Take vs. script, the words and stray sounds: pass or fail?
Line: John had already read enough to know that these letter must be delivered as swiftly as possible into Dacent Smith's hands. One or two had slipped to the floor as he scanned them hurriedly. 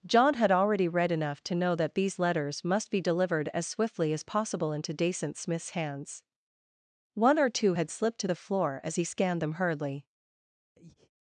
fail